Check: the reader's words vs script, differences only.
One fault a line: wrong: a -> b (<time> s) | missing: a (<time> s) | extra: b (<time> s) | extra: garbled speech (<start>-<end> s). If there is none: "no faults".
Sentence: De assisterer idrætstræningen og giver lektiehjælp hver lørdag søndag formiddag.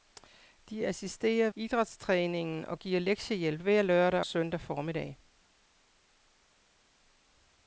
no faults